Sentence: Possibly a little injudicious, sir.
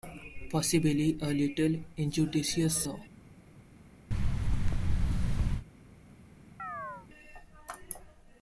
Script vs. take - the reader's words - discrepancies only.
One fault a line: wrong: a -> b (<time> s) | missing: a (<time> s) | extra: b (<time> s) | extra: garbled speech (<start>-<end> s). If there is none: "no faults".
no faults